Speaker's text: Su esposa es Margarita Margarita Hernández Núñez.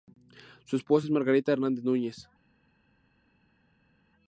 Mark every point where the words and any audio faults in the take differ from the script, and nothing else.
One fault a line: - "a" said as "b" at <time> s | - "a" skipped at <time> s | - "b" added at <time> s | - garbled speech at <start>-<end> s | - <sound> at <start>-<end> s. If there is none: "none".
- "Margarita" skipped at 1.5 s